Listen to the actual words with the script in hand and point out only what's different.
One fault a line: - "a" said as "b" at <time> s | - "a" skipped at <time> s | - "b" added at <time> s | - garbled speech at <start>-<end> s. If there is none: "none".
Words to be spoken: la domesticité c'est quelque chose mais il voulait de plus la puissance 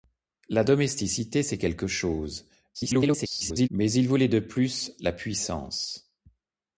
- garbled speech at 2.7-3.7 s